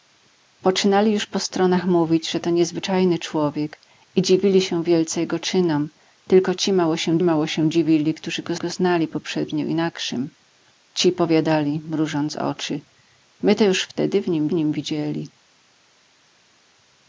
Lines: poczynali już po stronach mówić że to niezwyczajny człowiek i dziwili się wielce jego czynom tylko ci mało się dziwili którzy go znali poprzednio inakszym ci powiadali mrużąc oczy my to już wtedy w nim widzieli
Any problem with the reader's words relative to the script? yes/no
yes